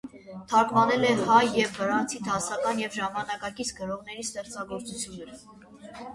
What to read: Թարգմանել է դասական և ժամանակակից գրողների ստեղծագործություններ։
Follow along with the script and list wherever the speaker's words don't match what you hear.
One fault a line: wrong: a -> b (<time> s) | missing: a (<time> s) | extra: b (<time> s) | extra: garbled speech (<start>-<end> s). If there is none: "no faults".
extra: հայ և վրացի (1.3 s)